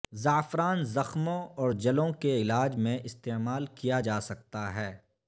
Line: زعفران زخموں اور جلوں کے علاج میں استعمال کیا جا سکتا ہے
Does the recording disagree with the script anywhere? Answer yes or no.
no